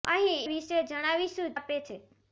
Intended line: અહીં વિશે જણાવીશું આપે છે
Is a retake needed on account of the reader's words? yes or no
no